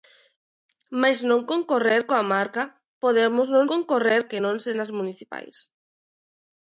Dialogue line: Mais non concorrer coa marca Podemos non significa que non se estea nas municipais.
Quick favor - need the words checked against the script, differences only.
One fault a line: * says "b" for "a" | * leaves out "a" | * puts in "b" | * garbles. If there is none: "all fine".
* says "concorrer" for "significa"
* leaves out "estea"